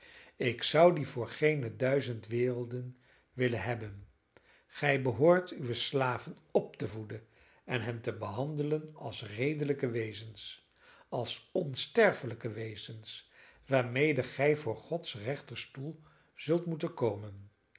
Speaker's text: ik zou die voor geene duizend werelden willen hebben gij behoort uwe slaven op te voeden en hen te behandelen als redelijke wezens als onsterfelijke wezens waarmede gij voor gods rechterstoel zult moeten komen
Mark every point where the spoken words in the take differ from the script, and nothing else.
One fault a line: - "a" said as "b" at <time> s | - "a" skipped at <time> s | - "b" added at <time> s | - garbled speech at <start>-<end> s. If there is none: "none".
none